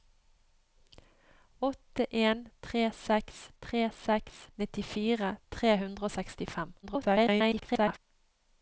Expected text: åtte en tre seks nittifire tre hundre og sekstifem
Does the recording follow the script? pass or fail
fail